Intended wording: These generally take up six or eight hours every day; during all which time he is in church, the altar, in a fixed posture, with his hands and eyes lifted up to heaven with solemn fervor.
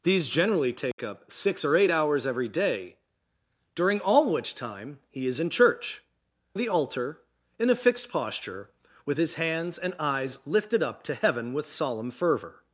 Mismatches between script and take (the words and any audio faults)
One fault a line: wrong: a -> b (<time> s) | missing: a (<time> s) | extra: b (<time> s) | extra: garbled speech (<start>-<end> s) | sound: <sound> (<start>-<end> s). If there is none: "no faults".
sound: dropout (0.9-1.0 s)